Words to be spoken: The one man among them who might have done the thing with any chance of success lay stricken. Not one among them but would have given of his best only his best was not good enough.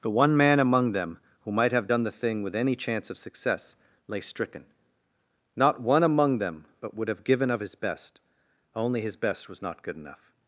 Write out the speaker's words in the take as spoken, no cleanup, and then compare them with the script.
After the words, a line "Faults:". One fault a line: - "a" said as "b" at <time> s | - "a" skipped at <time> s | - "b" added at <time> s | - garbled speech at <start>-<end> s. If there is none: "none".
The one man among them who might have done the thing with any chance of success lay stricken. Not one among them but would have given of his best only his best was not good enough.
Faults:
none